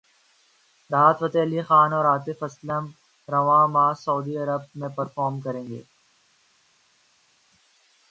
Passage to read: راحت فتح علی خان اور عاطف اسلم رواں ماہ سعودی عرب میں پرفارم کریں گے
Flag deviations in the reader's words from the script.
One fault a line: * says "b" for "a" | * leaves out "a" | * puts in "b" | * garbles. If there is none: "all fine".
all fine